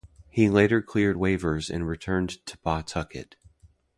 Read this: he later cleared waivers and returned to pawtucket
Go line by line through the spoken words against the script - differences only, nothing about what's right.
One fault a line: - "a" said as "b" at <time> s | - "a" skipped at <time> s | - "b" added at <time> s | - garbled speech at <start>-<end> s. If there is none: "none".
none